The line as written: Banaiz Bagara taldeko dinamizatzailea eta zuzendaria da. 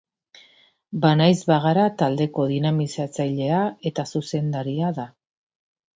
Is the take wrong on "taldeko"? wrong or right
right